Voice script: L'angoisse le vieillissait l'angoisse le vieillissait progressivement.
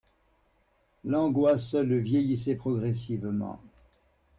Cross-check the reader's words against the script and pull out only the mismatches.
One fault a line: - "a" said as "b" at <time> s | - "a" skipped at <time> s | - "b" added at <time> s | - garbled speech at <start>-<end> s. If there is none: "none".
- "l'angoisse le vieillissait" skipped at 2.5 s